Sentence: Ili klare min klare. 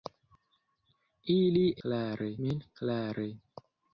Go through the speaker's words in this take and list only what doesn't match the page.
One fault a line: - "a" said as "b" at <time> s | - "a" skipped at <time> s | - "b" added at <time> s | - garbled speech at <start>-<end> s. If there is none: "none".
none